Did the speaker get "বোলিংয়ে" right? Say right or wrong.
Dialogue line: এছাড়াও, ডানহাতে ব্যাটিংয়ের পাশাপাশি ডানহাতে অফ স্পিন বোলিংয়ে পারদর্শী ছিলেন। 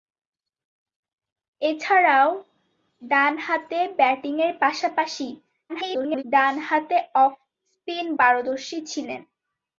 wrong